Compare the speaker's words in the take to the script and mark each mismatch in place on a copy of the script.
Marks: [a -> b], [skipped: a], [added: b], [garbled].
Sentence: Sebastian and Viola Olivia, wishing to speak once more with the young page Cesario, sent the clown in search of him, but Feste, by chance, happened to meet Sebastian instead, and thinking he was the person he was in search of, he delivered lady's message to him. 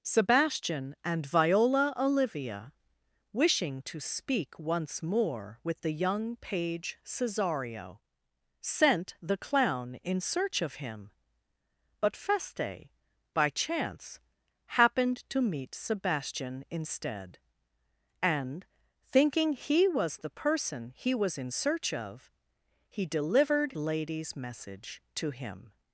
Sebastian and Viola Olivia, wishing to speak once more with the young page Cesario, sent the clown in search of him, but Feste, by chance, happened to meet Sebastian instead, and thinking he was the person he was in search of, he delivered lady's message to him.